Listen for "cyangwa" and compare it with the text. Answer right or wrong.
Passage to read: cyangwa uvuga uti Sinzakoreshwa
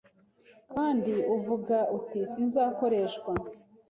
wrong